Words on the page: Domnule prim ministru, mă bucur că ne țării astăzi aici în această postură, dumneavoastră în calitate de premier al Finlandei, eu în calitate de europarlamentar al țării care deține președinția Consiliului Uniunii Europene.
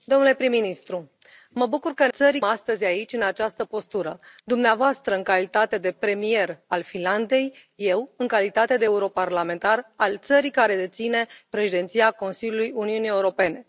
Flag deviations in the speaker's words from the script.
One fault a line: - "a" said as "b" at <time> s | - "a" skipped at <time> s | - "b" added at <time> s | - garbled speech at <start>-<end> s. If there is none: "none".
none